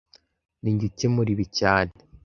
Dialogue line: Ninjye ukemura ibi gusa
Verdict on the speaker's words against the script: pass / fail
fail